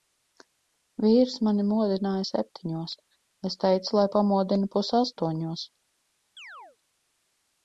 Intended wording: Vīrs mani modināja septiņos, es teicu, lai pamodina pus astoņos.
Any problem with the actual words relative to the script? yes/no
no